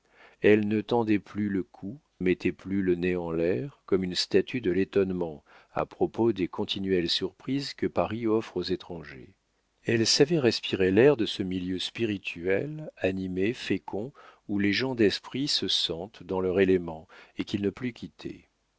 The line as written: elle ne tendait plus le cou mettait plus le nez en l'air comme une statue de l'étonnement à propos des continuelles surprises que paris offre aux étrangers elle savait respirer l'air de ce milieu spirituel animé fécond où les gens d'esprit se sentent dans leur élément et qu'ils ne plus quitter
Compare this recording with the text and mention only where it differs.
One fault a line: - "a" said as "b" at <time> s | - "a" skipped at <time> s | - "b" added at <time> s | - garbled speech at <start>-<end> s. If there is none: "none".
none